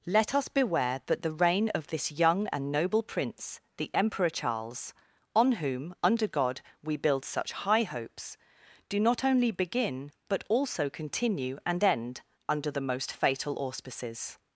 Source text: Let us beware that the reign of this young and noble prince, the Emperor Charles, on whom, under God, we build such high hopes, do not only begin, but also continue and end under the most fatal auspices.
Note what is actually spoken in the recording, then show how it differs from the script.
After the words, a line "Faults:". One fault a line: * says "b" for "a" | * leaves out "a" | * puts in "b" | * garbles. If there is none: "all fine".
Let us beware that the reign of this young and noble prince, the Emperor Charles, on whom, under God, we build such high hopes, do not only begin, but also continue and end under the most fatal auspices.
Faults:
all fine